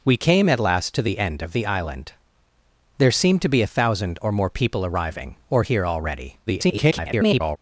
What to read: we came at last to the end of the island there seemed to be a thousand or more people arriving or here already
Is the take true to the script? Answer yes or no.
no